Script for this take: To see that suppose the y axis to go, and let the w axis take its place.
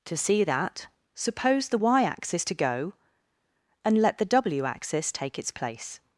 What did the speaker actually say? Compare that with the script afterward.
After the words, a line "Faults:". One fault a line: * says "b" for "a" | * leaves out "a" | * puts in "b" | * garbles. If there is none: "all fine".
To see that suppose the y axis to go, and let the w axis take its place.
Faults:
all fine